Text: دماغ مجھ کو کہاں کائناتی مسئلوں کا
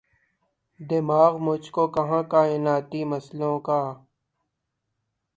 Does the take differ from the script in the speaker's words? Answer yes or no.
no